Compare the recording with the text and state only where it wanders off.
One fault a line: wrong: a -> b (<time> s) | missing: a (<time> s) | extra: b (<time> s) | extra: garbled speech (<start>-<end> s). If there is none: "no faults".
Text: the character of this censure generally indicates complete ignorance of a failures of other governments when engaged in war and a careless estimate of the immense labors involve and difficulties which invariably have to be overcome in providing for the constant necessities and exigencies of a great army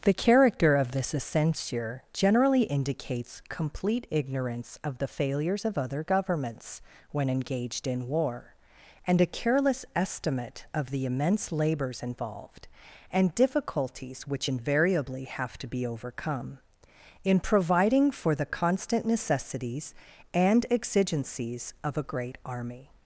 wrong: a -> the (5.0 s)
wrong: involve -> involved (12.0 s)